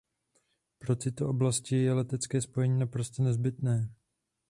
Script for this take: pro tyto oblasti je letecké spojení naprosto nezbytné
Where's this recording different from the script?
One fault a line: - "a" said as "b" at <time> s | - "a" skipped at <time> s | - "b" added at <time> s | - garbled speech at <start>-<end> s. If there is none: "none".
none